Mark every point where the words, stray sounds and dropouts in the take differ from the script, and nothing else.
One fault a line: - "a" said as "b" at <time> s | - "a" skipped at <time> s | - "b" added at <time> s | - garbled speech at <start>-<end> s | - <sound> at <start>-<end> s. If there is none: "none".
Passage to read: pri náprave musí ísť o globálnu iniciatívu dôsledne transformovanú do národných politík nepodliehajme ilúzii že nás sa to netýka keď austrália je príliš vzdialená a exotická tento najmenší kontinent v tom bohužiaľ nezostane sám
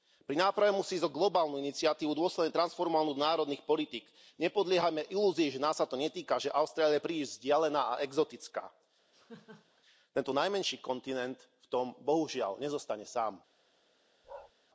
- "keď" said as "že" at 6.4 s
- laugh at 9.1-9.8 s
- bark at 14.2-14.5 s